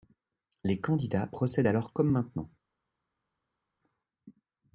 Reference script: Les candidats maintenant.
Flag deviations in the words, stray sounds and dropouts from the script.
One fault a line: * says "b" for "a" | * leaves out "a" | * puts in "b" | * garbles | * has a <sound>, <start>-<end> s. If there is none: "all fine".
* puts in "procèdent alors comme"